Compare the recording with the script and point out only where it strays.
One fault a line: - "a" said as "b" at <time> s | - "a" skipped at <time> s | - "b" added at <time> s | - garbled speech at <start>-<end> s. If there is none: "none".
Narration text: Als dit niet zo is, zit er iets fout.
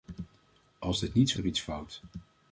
- "is zit" skipped at 1.4 s